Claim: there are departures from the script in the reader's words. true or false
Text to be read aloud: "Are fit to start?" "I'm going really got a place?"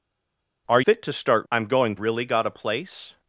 false